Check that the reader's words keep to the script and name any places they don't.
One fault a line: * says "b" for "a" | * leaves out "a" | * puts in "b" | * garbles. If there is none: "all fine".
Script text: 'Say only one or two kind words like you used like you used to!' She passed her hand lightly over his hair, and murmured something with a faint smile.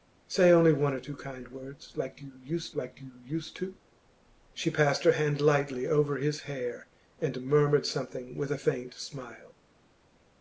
all fine